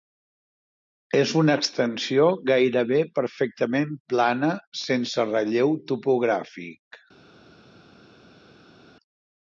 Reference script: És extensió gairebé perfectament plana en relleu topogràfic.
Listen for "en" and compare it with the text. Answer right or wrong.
wrong